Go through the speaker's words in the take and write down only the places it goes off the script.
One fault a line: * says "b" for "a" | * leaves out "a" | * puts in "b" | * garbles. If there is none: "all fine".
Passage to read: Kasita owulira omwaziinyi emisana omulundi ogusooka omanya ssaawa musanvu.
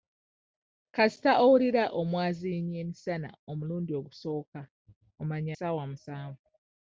all fine